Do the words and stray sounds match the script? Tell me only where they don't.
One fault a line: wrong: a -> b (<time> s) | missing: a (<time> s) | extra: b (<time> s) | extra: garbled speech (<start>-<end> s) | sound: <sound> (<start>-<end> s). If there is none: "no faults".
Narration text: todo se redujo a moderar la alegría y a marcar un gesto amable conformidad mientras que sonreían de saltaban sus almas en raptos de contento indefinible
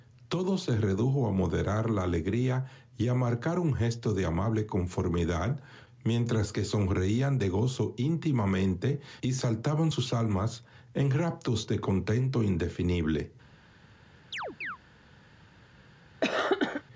extra: de (4.1 s)
extra: gozo íntimamente y (7.5 s)
sound: chirp (14.3-14.8 s)
sound: cough (16.2-16.8 s)